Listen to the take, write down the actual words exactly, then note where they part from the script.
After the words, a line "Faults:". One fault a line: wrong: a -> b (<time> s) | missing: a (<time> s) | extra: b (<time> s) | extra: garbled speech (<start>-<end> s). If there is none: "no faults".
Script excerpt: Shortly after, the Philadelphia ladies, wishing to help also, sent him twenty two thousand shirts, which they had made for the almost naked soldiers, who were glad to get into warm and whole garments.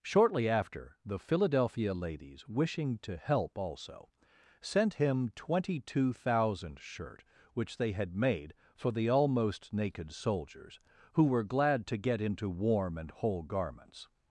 Shortly after, the Philadelphia ladies, wishing to help also, sent him twenty two thousand shirt, which they had made for the almost naked soldiers, who were glad to get into warm and whole garments.
Faults:
wrong: shirts -> shirt (6.8 s)